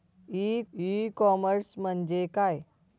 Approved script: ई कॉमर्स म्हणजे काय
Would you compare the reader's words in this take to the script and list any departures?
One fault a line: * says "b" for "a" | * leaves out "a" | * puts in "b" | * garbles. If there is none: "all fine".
* puts in "ई"